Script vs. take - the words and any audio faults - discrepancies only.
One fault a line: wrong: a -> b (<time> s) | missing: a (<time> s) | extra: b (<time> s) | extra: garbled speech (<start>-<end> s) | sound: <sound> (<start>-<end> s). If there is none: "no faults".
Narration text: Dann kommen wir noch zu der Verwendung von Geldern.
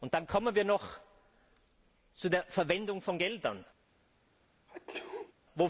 sound: sneeze (4.7-5.3 s)